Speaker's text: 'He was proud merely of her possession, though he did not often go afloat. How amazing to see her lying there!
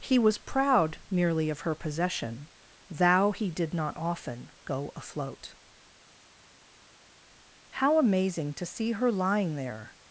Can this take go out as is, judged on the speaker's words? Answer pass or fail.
fail